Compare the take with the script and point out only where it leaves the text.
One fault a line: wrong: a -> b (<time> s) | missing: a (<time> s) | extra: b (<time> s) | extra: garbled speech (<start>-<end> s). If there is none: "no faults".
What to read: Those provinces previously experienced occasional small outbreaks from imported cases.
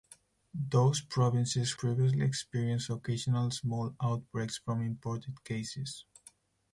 no faults